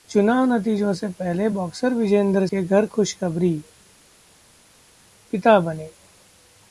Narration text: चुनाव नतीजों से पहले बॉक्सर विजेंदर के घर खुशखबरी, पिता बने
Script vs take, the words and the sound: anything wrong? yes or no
no